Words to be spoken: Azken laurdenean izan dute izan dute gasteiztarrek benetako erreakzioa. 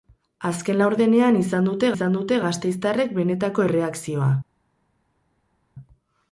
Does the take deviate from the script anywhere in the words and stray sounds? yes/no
no